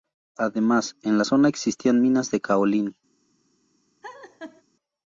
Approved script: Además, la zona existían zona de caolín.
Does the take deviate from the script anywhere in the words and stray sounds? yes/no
yes